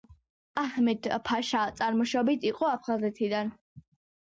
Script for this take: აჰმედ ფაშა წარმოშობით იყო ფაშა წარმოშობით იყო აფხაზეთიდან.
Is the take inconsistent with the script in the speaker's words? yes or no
yes